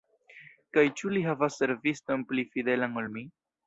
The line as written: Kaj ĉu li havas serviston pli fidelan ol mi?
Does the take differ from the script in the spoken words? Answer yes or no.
no